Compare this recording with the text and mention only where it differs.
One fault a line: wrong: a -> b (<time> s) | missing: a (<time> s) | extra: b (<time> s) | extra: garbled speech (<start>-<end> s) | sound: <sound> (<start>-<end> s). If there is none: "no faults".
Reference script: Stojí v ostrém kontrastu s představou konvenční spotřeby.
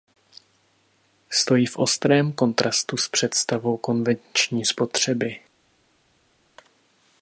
no faults